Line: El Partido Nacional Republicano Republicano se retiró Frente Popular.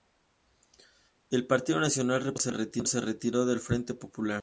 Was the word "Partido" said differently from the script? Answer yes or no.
no